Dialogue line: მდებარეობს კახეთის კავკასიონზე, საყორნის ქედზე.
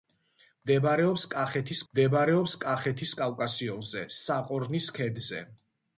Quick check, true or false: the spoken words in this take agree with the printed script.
false